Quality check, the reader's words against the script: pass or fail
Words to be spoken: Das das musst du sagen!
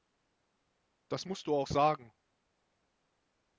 fail